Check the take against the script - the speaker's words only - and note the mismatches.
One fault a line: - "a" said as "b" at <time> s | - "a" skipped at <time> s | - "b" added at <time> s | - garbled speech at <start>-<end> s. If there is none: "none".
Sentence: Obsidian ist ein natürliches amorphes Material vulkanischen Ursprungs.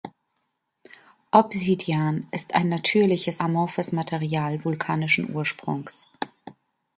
none